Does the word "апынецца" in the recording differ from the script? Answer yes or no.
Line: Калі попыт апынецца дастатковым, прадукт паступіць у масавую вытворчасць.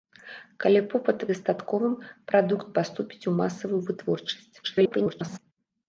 yes